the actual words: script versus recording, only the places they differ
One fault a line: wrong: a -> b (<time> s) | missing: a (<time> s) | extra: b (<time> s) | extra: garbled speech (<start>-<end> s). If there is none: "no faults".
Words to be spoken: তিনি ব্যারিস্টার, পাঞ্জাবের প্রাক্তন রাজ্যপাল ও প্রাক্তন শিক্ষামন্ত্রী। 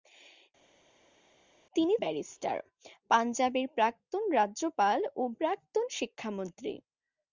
no faults